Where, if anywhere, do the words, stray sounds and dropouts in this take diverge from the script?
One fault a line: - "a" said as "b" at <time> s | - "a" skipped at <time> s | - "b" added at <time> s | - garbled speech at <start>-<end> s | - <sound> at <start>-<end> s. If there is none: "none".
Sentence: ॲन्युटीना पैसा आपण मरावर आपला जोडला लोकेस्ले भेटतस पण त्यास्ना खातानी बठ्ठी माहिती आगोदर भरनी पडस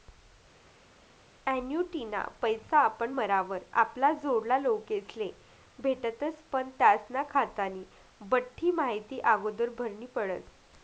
none